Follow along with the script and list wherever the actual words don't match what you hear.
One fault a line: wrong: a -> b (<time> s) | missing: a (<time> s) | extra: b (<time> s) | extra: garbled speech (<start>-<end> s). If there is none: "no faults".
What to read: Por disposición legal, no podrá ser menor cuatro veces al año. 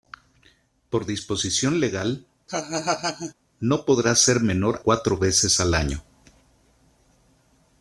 no faults